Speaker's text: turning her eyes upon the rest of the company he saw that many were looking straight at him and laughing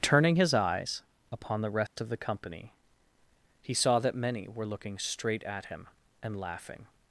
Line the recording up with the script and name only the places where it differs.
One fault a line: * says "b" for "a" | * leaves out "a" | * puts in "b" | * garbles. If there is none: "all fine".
* says "his" for "her"